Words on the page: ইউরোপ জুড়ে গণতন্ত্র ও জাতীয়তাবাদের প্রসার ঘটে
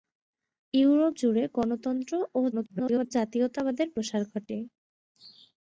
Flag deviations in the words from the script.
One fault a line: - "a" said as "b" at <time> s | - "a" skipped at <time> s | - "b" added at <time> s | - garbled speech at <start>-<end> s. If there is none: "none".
- garbled speech at 2.5-3.1 s